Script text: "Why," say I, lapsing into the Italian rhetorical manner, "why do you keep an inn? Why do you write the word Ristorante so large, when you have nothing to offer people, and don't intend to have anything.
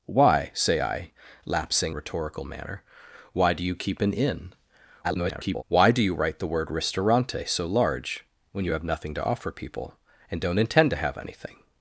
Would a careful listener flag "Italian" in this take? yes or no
yes